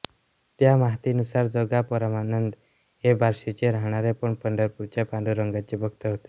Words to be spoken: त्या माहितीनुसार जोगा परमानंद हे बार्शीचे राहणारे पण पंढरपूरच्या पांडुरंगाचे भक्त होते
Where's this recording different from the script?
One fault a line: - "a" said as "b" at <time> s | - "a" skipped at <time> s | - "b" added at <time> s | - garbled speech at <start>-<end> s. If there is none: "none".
none